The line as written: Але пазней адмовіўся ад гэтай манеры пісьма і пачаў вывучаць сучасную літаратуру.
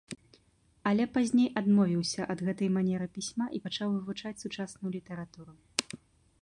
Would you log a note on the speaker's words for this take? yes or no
no